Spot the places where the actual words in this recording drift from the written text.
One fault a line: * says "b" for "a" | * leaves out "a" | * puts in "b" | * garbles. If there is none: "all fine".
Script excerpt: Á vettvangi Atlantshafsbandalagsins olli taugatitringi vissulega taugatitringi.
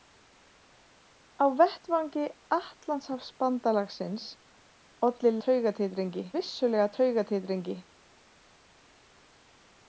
all fine